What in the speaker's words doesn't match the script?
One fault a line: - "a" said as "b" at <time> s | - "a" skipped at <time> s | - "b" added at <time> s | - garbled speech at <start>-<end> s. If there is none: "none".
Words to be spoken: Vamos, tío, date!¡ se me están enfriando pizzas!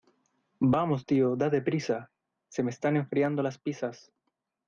- "prisa" added at 1.6 s
- "las" added at 3.4 s